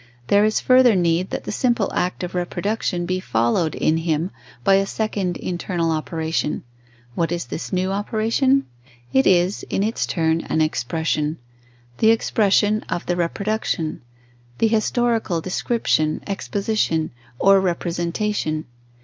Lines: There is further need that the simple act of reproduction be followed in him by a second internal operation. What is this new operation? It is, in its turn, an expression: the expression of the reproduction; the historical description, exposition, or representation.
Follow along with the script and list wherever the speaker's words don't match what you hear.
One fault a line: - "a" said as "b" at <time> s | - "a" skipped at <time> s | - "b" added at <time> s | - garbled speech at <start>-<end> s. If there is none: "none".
none